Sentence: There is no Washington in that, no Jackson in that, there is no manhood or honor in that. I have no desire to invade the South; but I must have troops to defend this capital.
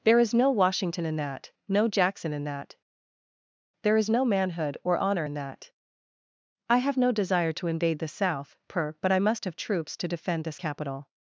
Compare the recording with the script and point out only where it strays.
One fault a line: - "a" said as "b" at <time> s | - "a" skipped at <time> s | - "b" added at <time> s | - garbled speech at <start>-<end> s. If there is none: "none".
- "per" added at 8.7 s